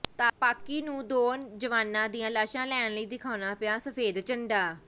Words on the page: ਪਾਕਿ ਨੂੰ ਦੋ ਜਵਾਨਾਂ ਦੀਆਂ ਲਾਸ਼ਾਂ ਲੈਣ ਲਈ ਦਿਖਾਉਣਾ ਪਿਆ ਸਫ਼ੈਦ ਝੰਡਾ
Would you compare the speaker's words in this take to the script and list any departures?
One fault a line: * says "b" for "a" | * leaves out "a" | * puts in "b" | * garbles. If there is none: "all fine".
all fine